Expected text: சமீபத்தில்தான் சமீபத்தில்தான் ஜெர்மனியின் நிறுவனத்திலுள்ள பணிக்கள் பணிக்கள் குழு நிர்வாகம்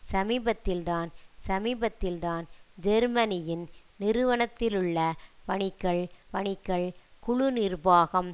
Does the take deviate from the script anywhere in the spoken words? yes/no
no